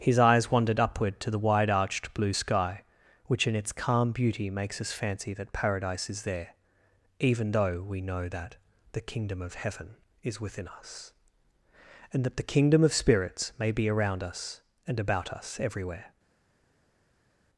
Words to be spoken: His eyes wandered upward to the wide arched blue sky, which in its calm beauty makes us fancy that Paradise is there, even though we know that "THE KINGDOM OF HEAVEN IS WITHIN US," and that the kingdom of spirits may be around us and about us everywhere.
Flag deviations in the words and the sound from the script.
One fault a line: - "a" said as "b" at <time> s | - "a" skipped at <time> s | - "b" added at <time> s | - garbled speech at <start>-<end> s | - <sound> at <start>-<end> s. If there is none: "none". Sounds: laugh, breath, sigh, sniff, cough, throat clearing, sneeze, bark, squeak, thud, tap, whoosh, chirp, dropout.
none